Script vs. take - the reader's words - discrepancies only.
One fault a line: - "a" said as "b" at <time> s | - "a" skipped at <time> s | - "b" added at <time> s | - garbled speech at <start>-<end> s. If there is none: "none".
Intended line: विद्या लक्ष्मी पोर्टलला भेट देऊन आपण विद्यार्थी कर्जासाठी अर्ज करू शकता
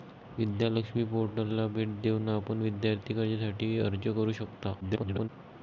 - garbled speech at 4.8-5.3 s